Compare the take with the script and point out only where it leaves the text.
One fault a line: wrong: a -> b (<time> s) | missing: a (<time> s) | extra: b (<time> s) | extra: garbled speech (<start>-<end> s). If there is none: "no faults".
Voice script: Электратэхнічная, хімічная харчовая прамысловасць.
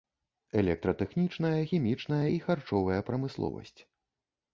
extra: і (2.3 s)